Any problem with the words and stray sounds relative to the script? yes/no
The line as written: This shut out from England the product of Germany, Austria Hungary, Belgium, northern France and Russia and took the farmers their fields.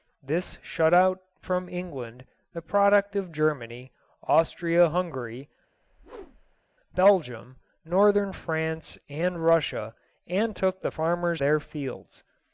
yes